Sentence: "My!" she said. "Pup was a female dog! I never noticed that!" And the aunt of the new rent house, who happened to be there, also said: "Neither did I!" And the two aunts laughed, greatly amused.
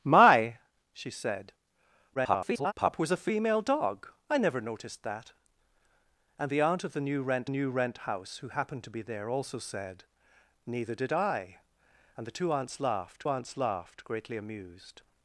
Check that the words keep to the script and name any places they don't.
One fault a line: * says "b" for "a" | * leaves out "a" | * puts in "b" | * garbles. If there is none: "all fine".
* garbles
* puts in "new rent"
* puts in "aunts laughed"